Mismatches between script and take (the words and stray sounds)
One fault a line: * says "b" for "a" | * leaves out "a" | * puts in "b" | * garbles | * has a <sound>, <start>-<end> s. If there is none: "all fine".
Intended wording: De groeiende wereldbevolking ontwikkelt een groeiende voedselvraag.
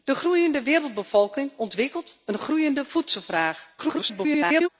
* garbles